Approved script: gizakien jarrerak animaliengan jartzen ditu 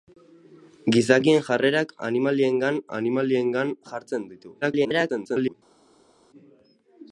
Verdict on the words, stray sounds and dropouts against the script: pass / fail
fail